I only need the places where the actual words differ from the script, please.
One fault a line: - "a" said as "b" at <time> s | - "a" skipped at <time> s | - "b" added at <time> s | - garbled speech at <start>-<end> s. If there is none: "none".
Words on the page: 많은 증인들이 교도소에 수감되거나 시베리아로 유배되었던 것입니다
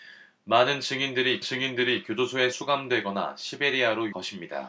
- "증인들이" added at 1.4 s
- "유배되었던" skipped at 4.1 s